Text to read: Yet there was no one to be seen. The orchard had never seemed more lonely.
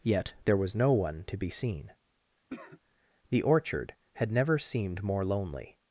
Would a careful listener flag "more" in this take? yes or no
no